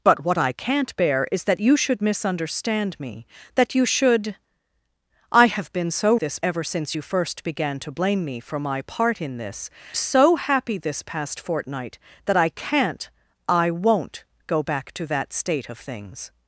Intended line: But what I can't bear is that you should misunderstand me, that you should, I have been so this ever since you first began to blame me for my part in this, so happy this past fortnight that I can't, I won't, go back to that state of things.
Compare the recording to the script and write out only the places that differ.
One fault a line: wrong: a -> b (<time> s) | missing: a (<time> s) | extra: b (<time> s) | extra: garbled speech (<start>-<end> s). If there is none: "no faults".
no faults